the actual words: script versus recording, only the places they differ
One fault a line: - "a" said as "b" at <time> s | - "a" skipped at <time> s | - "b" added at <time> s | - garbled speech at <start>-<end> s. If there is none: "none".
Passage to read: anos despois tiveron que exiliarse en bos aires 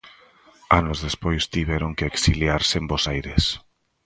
none